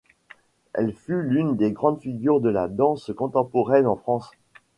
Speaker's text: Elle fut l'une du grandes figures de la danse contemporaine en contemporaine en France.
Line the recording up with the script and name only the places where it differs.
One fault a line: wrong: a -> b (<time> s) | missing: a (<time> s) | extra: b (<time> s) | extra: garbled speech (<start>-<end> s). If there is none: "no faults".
wrong: du -> des (1.6 s)
missing: contemporaine en (4.0 s)